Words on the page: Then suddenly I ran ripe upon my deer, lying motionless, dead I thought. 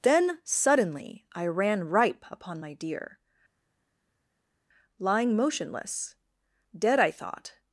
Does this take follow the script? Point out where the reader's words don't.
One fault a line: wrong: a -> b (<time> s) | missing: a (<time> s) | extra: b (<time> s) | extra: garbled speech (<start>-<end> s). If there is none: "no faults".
no faults